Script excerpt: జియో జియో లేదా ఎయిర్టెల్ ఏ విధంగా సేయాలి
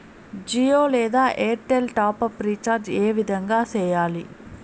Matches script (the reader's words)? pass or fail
fail